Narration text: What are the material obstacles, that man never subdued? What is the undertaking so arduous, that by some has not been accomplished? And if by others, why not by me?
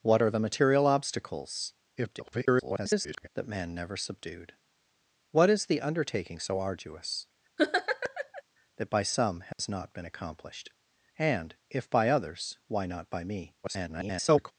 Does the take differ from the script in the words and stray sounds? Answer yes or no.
yes